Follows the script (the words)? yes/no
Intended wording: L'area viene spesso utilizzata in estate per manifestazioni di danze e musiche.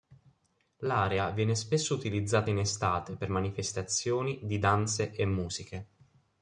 yes